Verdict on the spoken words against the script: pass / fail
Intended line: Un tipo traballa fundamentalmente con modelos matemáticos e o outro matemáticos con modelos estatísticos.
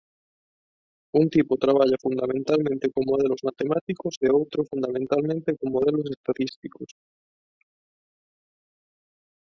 fail